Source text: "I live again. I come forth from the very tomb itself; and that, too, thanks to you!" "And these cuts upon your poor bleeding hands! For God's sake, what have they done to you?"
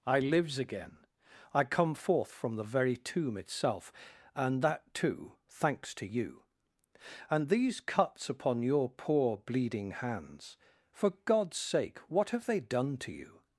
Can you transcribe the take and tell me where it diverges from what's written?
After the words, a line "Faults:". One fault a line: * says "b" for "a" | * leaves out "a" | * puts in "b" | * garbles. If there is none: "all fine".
"I lives again. I come forth from the very tomb itself; and that, too, thanks to you!" "And these cuts upon your poor bleeding hands! For God's sake, what have they done to you?"
Faults:
* says "lives" for "live"